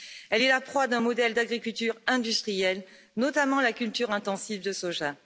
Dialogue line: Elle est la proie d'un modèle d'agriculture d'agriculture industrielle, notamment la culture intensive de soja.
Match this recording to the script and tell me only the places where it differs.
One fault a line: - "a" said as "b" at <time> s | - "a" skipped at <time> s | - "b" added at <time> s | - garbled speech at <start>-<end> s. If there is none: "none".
- "d'agriculture" skipped at 2.0 s